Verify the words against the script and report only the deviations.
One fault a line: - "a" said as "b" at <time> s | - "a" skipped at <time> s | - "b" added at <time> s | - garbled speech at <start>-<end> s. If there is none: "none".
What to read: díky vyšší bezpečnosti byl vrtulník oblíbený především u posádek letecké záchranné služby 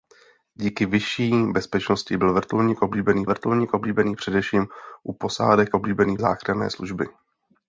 - "vrtulník oblíbený" added at 3.3 s
- "letecké" said as "oblíbený" at 5.7 s